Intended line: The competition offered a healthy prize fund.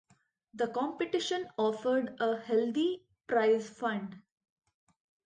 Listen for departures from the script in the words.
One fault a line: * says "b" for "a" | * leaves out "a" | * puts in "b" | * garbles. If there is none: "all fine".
all fine